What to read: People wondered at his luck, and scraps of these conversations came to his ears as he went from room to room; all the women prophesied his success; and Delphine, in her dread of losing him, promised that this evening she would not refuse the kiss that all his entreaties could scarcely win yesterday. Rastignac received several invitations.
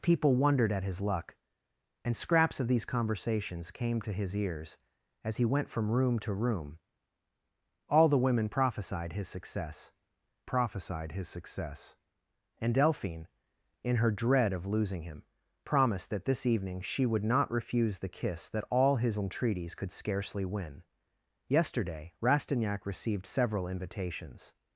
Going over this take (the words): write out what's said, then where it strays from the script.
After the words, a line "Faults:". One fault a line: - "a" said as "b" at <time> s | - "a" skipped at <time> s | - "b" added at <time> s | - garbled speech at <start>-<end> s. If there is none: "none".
People wondered at his luck, and scraps of these conversations came to his ears as he went from room to room; all the women prophesied his success prophesied his success; and Delphine, in her dread of losing him, promised that this evening she would not refuse the kiss that all his entreaties could scarcely win yesterday. Rastignac received several invitations.
Faults:
- "prophesied his success" added at 10.4 s